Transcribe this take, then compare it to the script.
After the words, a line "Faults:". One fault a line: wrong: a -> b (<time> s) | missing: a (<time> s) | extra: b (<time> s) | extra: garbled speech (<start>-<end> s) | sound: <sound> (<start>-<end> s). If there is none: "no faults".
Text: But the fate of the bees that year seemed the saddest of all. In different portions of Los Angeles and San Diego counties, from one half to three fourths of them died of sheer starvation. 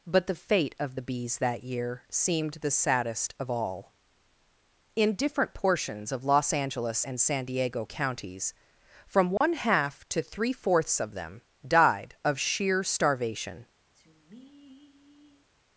But the fate of the bees that year seemed the saddest of all. In different portions of Los Angeles and San Diego counties, from one half to three fourths of them died of sheer starvation.
Faults:
sound: dropout (9.4-9.4 s)
sound: sigh (13.9-15.5 s)